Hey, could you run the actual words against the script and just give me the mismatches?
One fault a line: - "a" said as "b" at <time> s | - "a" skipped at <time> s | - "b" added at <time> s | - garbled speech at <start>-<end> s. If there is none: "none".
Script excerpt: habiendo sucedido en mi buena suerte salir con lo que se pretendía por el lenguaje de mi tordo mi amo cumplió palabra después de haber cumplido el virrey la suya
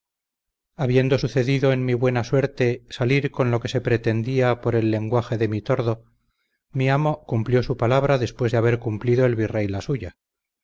- "su" added at 7.6 s